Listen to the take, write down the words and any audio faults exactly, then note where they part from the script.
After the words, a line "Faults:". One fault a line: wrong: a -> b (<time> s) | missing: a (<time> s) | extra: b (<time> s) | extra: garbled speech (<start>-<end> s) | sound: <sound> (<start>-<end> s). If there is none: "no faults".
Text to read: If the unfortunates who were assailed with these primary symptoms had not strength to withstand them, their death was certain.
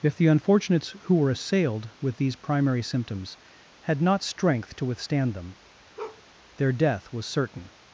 If the unfortunates who were assailed with these primary symptoms had not strength to withstand them, their death was certain.
Faults:
sound: bark (6.0-6.2 s)